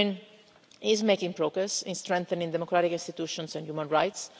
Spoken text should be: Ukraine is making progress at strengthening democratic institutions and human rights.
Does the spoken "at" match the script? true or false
false